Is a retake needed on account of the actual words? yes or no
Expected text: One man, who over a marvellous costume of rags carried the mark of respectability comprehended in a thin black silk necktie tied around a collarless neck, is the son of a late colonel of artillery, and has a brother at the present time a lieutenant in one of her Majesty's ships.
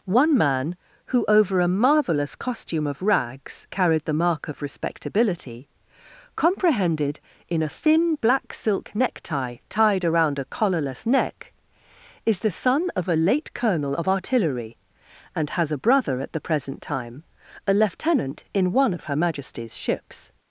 no